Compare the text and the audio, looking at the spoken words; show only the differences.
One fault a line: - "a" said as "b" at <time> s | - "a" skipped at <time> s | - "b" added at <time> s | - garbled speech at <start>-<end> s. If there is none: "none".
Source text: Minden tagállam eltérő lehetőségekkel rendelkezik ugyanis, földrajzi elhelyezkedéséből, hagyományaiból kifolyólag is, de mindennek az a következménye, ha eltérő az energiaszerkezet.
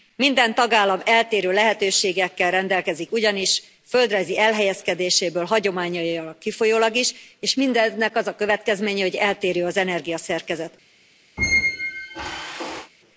- "de" said as "és" at 7.4 s
- "ha" said as "hogy" at 9.0 s